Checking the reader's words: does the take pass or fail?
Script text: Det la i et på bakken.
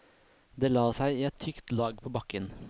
fail